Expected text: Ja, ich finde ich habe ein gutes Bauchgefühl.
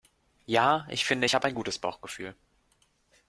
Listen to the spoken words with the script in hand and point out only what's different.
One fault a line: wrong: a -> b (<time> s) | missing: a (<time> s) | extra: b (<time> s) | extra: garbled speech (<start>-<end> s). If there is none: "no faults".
no faults